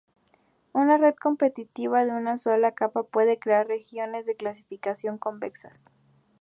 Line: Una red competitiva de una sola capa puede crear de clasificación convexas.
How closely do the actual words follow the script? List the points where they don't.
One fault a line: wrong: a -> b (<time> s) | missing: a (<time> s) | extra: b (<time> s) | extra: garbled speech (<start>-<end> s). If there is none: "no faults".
extra: regiones (3.7 s)